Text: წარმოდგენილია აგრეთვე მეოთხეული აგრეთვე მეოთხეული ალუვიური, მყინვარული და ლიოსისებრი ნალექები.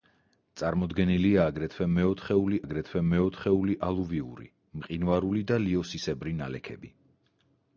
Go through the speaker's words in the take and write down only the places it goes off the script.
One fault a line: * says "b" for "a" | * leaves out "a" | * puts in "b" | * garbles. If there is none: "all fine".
all fine